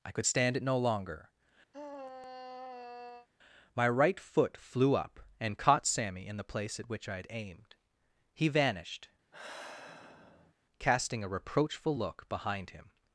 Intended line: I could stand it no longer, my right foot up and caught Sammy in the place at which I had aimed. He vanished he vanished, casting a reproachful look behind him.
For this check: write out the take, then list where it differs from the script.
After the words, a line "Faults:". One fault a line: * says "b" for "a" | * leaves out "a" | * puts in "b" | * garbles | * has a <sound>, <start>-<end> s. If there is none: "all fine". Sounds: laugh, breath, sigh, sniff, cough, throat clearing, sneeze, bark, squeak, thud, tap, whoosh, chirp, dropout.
I could stand it no longer, my right foot flew up and caught Sammy in the place at which I had aimed. He vanished, casting a reproachful look behind him.
Faults:
* has a sigh, 1.7-3.3 s
* puts in "flew"
* leaves out "he vanished"
* has a sigh, 9.3-10.5 s